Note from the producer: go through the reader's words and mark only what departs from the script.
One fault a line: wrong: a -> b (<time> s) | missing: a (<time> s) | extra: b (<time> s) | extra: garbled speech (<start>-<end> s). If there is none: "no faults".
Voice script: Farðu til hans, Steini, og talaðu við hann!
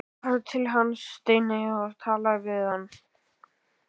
no faults